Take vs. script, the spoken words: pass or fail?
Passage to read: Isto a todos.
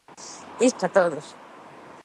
pass